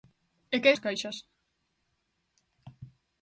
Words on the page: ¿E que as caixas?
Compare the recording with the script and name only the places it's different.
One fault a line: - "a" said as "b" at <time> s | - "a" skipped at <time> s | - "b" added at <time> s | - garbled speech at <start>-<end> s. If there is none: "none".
none